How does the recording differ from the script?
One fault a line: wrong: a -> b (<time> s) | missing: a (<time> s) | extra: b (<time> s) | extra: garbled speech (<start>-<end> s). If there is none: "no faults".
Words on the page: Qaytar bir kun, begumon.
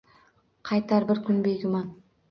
no faults